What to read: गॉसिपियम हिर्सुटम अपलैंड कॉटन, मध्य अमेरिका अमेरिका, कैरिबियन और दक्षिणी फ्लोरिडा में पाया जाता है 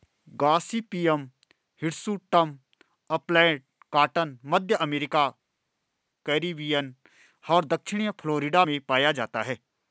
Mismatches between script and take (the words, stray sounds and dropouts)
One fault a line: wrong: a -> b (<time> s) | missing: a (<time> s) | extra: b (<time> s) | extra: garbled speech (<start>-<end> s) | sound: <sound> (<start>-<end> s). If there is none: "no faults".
missing: अमेरिका (5.3 s)